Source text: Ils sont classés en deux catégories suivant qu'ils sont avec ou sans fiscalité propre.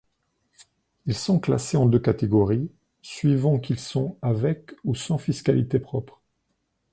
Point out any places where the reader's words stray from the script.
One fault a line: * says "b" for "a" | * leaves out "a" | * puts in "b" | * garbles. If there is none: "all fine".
all fine